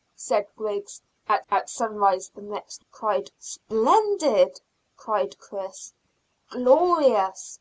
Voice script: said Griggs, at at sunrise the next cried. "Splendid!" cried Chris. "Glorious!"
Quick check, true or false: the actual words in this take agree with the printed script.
true